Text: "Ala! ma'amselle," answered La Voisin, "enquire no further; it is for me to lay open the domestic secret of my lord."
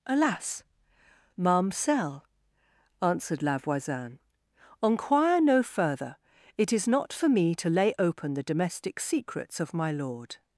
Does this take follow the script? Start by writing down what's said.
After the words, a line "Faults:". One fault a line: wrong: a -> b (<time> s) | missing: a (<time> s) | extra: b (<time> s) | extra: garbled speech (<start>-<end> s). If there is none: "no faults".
"Alas! ma'amselle," answered La Voisin, "enquire no further; it is not for me to lay open the domestic secrets of my lord."
Faults:
wrong: Ala -> Alas (0.1 s)
extra: not (6.9 s)
wrong: secret -> secrets (9.0 s)